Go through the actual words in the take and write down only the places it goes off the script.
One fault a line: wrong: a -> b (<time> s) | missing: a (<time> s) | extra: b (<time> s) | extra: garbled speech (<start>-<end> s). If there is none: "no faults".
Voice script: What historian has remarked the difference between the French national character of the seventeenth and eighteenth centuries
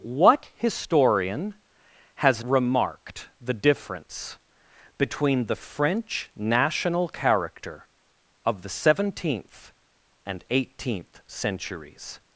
no faults